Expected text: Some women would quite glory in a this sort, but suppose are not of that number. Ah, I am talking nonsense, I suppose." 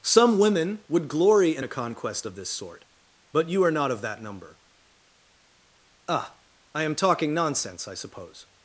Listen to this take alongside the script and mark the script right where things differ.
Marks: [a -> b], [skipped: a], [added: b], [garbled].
Some women would [skipped: quite] glory in a [added: conquest of] this sort, but [suppose -> you] are not of that number. Ah, I am talking nonsense, I suppose."